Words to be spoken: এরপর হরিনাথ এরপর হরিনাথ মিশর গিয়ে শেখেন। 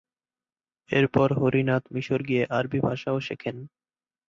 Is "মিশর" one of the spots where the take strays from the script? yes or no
yes